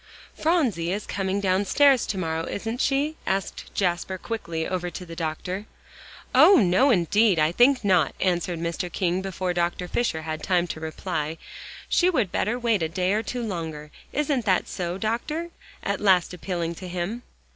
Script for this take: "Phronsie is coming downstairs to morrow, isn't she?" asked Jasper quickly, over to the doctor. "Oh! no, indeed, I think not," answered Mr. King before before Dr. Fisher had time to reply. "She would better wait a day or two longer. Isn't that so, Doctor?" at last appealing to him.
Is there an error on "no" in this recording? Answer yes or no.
no